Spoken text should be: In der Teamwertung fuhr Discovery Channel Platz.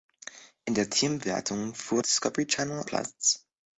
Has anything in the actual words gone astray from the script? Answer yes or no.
no